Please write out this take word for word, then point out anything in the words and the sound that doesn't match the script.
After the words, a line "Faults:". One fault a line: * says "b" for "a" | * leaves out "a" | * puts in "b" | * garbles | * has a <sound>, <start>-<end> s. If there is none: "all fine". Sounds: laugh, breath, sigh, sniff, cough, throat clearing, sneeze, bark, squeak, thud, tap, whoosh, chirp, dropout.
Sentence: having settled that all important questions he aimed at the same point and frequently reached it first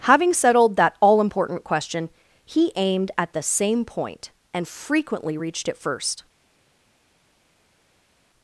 having settled that all important question he aimed at the same point and frequently reached it first
Faults:
* says "question" for "questions"